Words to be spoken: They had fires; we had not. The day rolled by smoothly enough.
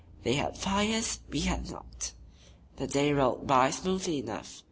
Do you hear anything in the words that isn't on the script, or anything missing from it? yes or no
no